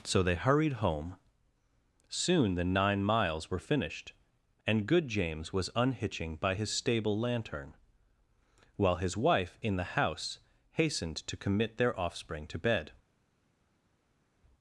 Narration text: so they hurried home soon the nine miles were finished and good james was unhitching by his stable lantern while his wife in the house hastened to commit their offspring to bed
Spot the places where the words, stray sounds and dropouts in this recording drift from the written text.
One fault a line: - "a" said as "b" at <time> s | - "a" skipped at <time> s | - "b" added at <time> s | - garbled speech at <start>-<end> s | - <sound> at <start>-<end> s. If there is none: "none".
none